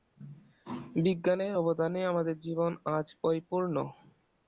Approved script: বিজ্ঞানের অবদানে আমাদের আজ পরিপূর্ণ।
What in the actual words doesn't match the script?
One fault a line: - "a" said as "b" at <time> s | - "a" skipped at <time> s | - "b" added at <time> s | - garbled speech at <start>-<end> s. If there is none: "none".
- "জীবন" added at 2.4 s